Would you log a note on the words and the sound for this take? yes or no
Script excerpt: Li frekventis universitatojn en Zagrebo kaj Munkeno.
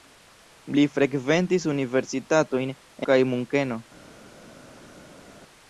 yes